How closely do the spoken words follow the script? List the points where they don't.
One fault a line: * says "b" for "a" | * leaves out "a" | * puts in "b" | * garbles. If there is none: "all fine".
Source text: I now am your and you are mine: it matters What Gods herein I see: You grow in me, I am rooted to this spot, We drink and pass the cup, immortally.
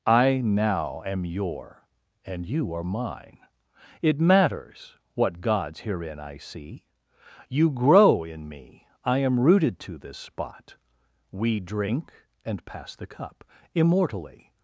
all fine